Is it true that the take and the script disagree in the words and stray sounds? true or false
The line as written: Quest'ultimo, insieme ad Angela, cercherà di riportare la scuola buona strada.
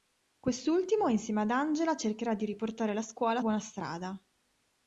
false